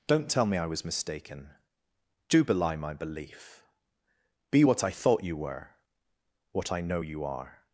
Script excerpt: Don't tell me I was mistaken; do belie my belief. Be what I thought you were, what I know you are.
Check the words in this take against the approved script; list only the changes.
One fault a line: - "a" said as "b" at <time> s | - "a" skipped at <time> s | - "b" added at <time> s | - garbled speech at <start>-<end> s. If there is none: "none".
none